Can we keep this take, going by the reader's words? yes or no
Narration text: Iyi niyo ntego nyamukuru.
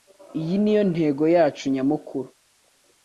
no